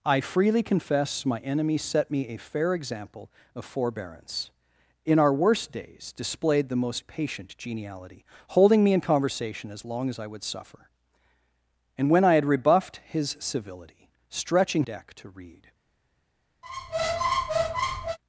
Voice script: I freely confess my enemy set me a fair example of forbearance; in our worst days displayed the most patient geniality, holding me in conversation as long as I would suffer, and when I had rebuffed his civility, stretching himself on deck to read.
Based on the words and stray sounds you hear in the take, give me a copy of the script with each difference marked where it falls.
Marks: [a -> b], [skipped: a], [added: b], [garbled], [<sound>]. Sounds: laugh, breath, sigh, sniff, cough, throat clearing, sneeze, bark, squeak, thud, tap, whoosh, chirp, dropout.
I freely confess my enemy set me a fair example of forbearance; in our worst days displayed the most patient geniality, holding me in conversation as long as I would suffer, and when I had rebuffed his civility, stretching [skipped: himself on] deck to read. [squeak]